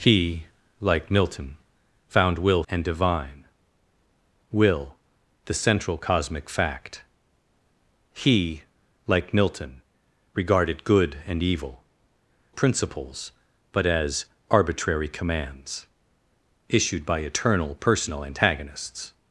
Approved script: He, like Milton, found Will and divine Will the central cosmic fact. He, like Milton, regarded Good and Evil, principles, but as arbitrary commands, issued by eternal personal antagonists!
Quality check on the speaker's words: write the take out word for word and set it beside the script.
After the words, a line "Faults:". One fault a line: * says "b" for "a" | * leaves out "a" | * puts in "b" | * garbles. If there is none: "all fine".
He, like Milton, found Will and divine Will the central cosmic fact. He, like Milton, regarded Good and Evil, principles, but as arbitrary commands, issued by eternal personal antagonists!
Faults:
all fine